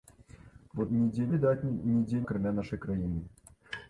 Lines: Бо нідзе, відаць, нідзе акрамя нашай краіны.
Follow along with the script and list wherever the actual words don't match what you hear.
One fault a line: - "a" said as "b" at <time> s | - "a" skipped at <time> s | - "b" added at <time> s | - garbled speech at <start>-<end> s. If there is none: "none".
none